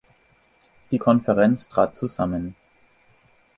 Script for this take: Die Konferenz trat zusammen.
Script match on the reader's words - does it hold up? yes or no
yes